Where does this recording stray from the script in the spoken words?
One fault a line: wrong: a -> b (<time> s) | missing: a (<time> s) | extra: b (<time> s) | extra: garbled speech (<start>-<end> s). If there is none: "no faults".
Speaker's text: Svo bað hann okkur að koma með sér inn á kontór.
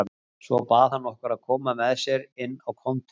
no faults